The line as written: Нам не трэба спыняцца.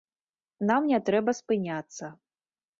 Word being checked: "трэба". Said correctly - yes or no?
yes